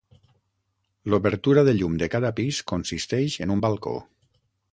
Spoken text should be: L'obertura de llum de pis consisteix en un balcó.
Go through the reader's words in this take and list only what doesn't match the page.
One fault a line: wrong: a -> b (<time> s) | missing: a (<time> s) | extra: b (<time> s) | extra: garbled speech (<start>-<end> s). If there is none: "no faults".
extra: cada (2.1 s)